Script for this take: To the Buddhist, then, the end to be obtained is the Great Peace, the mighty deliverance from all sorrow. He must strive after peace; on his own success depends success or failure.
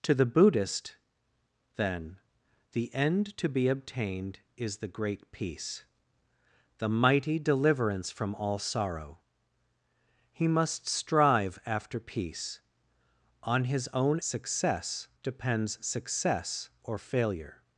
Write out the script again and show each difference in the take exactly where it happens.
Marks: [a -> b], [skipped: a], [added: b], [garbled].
To the Buddhist, then, the end to be obtained is the Great Peace, the mighty deliverance from all sorrow. He must strive after peace; on his own success depends success or failure.